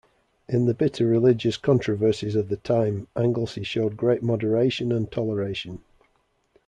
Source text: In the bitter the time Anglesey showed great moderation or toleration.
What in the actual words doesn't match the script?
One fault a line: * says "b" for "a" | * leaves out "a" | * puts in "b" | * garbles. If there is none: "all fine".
* puts in "religious controversies of"
* says "and" for "or"